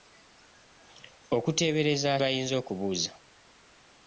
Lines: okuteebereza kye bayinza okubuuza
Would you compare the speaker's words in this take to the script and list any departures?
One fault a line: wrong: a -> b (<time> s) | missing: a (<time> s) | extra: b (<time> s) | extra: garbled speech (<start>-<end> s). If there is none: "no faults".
missing: kye (2.1 s)